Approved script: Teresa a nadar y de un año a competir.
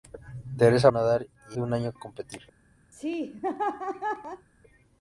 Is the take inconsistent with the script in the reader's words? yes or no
no